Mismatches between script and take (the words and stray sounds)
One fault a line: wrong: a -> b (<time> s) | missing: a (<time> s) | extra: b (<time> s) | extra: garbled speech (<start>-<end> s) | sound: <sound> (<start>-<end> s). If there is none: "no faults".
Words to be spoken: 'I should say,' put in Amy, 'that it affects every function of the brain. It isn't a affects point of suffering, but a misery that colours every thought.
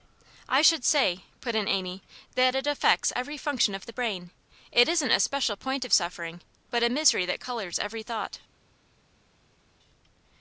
wrong: affects -> special (5.2 s)